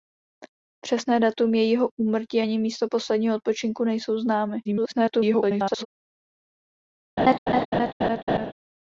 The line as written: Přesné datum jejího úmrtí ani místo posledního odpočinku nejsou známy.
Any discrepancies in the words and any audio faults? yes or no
yes